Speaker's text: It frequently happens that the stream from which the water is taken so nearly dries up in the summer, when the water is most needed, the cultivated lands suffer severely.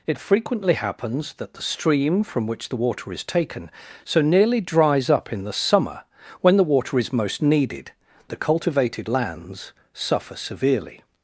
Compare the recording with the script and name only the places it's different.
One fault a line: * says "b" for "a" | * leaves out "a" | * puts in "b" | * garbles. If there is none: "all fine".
all fine